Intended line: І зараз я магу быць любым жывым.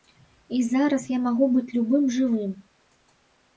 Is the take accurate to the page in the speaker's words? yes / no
yes